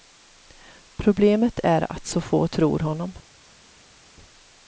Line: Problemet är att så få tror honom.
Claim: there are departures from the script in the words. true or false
false